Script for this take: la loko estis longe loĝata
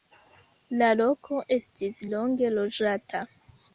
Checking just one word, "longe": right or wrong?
right